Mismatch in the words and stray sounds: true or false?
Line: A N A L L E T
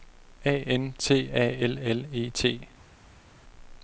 true